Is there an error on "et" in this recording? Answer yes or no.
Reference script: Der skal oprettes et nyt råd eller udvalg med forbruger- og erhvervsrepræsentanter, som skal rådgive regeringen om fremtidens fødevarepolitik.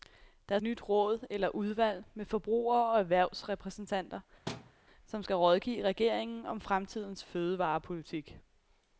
yes